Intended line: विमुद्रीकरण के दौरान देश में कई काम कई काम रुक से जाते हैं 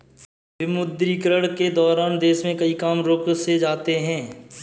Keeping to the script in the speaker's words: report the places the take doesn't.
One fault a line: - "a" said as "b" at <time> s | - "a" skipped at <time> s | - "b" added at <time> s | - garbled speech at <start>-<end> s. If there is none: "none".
- "कई काम" skipped at 3.0 s